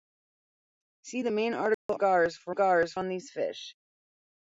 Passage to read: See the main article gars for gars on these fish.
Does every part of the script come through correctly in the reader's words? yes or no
yes